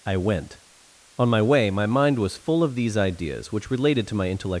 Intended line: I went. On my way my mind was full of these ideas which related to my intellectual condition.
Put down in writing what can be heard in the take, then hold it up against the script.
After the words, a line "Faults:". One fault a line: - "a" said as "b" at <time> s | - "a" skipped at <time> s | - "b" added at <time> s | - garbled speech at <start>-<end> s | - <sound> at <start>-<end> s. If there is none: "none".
I went. On my way my mind was full of these ideas which related to my intellectual.
Faults:
- "condition" skipped at 4.5 s